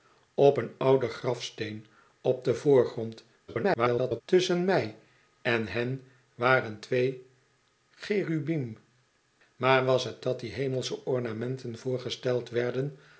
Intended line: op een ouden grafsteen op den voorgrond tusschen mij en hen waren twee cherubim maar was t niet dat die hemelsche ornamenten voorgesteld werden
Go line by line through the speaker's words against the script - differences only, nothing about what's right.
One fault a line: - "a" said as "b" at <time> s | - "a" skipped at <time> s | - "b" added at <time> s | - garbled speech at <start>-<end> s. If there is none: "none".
- garbled speech at 3.5-4.2 s
- "niet" skipped at 10.2 s